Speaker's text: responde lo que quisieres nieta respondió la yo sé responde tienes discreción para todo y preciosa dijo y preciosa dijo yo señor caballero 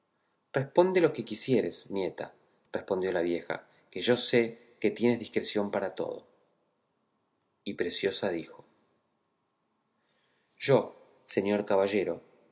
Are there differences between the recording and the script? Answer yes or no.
yes